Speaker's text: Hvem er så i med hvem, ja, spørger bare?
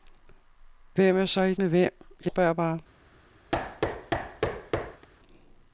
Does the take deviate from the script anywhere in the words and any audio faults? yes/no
yes